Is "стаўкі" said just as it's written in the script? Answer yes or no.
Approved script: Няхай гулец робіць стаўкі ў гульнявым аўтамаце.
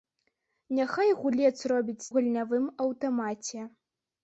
no